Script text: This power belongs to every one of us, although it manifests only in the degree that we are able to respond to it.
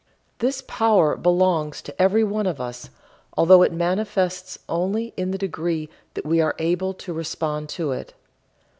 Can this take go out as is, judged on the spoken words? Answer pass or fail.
pass